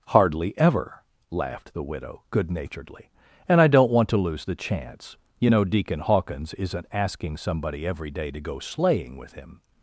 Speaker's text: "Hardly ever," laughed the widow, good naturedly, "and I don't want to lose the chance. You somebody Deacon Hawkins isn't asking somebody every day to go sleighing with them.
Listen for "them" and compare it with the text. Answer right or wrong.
wrong